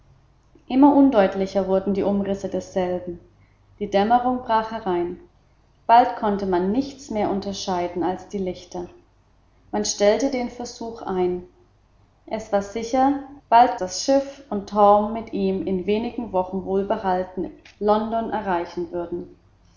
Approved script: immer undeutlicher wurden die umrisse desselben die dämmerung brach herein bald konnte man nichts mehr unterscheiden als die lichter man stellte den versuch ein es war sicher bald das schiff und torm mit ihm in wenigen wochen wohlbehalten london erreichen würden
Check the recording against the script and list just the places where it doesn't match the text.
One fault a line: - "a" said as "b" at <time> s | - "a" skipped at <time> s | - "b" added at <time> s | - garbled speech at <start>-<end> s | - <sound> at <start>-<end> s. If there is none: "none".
none